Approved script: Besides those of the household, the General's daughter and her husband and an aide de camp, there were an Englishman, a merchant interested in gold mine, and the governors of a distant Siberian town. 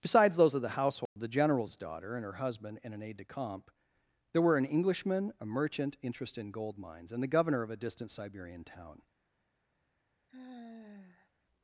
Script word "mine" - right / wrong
wrong